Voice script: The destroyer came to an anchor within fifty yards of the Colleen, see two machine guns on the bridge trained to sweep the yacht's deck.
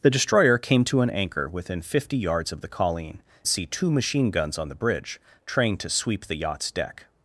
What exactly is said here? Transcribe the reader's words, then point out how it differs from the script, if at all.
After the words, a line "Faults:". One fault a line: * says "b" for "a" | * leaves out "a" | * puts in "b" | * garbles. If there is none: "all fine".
The destroyer came to an anchor within fifty yards of the Colleen, see two machine guns on the bridge trained to sweep the yacht's deck.
Faults:
all fine